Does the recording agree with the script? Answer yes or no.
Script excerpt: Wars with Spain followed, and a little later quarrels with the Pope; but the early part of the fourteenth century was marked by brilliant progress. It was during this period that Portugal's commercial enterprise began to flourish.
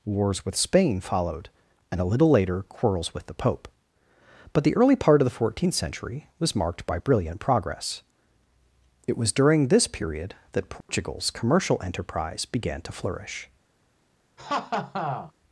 yes